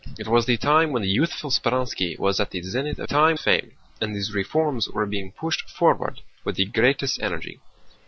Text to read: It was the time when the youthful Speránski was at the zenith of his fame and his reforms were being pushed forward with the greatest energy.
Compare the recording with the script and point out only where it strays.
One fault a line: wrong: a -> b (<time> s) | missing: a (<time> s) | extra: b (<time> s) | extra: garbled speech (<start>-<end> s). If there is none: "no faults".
wrong: his -> time (3.0 s)